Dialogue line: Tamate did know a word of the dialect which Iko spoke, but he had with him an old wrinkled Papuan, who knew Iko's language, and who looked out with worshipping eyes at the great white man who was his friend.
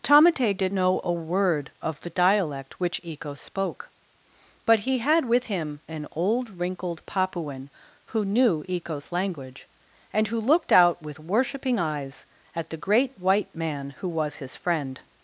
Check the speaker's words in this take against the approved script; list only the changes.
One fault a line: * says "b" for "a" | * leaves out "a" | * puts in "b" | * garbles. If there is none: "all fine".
all fine